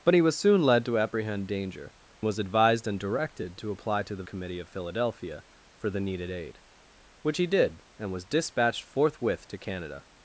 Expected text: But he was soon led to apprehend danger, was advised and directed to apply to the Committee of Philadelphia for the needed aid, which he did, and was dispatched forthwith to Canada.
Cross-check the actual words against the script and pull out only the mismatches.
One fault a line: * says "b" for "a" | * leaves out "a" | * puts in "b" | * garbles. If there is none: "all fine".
all fine